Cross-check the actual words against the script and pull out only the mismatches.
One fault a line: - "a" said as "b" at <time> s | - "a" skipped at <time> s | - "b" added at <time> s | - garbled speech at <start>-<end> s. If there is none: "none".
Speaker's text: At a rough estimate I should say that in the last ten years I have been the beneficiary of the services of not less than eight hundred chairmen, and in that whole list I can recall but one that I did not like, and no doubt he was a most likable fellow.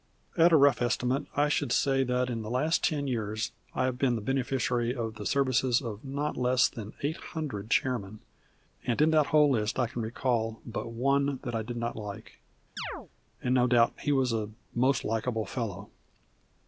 none